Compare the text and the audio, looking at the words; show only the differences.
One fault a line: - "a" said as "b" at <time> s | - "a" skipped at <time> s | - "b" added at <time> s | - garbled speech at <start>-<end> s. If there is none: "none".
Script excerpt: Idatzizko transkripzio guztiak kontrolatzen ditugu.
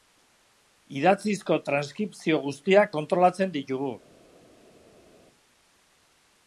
none